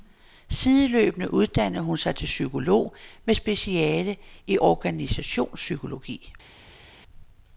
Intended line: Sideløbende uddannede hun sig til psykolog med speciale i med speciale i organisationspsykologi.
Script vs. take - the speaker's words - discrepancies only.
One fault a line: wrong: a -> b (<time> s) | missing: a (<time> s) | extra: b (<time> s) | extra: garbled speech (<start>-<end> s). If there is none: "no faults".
missing: med speciale i (4.6 s)